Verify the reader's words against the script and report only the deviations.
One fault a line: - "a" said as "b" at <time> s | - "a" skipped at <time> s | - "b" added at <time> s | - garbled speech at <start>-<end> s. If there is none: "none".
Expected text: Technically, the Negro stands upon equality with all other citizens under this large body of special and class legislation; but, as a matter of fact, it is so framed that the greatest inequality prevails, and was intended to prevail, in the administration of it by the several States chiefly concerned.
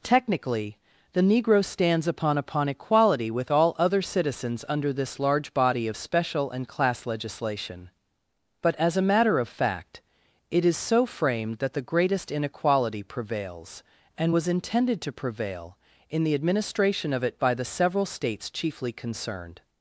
- "upon" added at 2.4 s